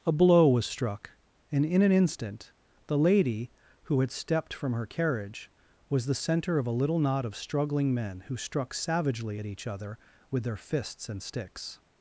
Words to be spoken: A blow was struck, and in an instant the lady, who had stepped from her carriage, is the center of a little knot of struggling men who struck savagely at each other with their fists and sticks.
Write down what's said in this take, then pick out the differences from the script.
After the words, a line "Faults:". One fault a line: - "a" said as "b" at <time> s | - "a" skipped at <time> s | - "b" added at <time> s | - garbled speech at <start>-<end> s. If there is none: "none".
A blow was struck, and in an instant the lady, who had stepped from her carriage, was the center of a little knot of struggling men who struck savagely at each other with their fists and sticks.
Faults:
- "is" said as "was" at 5.9 s